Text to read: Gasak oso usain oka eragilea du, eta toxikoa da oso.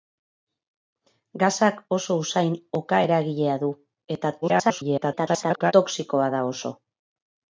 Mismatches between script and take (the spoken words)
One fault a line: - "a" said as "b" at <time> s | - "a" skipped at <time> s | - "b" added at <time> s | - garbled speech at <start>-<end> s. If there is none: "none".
- garbled speech at 4.4-5.7 s